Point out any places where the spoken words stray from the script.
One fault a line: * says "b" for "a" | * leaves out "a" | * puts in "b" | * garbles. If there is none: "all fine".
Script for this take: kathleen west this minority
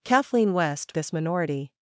all fine